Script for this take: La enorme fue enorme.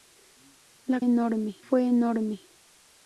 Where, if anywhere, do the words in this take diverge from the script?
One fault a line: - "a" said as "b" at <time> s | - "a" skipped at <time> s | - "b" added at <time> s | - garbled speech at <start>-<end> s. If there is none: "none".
none